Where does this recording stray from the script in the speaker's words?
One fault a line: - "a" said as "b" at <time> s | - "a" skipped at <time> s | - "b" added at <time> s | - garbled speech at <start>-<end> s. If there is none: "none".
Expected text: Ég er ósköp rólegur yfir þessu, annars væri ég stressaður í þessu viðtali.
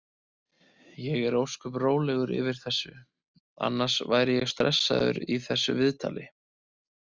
none